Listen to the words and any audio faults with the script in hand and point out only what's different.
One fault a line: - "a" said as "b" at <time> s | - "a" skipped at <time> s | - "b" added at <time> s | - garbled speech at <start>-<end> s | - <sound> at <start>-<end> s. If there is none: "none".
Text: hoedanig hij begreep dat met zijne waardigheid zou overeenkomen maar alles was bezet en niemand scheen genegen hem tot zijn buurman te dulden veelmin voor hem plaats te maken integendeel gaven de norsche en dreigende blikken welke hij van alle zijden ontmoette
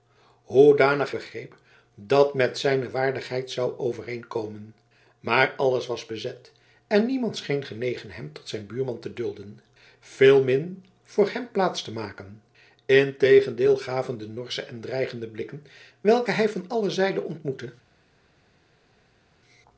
- "hij" skipped at 1.1 s